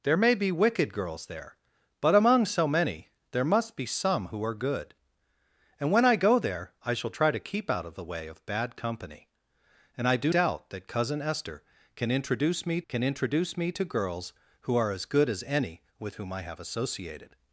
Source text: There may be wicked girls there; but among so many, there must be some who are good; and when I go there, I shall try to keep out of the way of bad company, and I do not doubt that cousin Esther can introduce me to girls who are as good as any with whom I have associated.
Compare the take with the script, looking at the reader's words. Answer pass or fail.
fail